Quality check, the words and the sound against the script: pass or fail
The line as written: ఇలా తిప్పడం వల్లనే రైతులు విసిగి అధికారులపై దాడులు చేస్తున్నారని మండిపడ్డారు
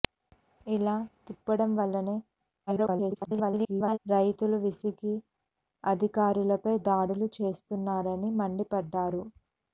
fail